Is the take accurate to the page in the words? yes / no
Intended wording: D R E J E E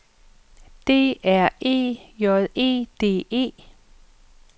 no